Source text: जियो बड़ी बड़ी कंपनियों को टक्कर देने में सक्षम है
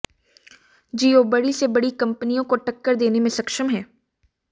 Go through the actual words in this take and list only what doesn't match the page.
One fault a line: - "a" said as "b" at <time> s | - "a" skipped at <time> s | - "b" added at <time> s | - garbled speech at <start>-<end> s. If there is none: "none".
- "से" added at 1.5 s